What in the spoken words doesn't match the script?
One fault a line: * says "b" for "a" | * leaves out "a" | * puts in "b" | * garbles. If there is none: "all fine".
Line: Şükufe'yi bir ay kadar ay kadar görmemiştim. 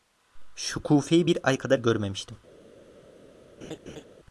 * leaves out "ay kadar"